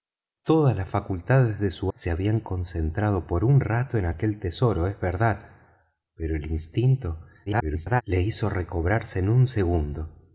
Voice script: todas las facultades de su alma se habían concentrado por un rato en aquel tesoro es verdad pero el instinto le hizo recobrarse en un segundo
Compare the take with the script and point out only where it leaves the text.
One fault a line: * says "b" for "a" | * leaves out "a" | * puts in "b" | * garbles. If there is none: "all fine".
* leaves out "alma"
* garbles